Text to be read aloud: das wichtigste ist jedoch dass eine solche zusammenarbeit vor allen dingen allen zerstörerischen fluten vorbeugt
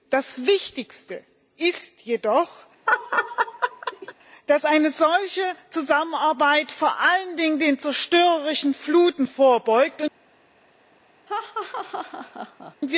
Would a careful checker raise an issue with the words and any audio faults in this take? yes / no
yes